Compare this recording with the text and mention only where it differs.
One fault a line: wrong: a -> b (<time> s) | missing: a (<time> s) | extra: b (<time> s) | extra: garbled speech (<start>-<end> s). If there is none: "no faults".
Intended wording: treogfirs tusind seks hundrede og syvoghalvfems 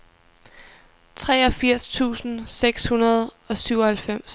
no faults